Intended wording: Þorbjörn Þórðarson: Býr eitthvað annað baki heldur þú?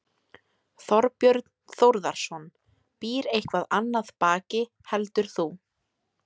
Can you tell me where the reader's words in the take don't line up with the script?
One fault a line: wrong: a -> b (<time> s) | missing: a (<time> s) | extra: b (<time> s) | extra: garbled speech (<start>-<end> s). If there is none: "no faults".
no faults